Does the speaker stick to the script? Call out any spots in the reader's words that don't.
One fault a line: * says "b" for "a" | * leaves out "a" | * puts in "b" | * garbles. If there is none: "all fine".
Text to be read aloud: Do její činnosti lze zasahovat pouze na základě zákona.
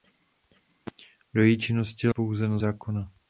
* leaves out "lze zasahovat"
* leaves out "základě"